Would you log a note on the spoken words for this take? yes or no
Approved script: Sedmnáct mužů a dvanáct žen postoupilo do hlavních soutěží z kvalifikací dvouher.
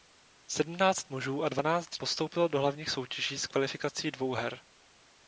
yes